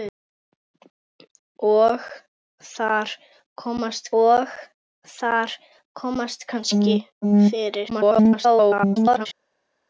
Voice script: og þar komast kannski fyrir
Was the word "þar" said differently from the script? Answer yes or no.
no